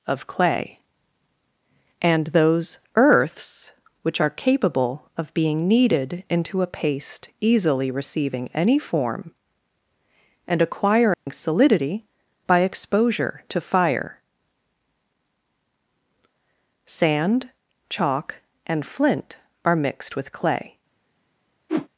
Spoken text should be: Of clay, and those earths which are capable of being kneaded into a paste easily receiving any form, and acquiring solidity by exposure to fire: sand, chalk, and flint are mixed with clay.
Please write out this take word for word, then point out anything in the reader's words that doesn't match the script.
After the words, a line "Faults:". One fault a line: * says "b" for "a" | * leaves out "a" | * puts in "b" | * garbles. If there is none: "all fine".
Of clay, and those earths which are capable of being kneaded into a paste easily receiving any form, and acquiring solidity by exposure to fire: sand, chalk, and flint are mixed with clay.
Faults:
all fine